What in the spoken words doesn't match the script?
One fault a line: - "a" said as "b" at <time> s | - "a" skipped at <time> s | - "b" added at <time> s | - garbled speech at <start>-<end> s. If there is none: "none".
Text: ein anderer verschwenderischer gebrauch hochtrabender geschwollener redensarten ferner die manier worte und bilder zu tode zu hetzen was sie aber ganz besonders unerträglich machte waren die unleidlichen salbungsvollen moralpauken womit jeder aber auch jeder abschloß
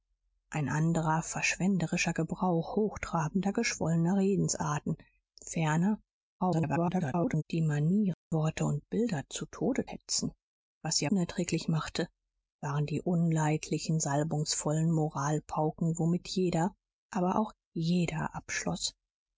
- garbled speech at 6.4-7.4 s
- "zu" skipped at 9.9 s
- "aber ganz besonders" skipped at 11.1 s